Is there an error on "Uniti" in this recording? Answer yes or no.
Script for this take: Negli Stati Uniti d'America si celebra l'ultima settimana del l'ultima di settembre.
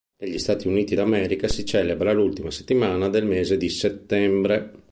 no